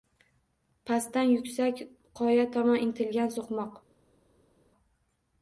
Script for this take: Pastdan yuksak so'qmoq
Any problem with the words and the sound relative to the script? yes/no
yes